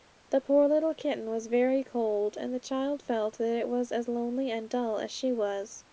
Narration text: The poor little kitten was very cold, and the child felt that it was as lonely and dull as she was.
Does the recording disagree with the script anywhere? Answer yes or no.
no